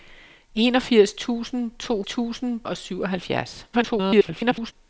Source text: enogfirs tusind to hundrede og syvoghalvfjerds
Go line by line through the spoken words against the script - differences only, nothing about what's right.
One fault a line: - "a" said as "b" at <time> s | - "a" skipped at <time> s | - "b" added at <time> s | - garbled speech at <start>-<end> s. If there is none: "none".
- "hundrede" said as "tusind" at 2.0 s
- garbled speech at 3.7-4.7 s